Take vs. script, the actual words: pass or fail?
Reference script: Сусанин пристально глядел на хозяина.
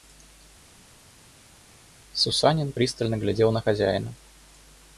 pass